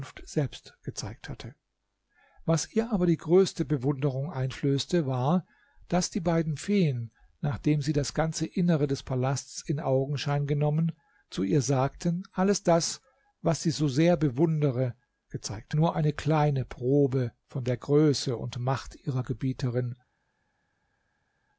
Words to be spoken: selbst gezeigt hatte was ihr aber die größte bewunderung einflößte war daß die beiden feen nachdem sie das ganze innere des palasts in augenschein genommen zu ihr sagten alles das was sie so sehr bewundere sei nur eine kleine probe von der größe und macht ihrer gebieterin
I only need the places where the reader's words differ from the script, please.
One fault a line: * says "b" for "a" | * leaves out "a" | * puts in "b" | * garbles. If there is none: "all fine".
* says "gezeigt" for "sei"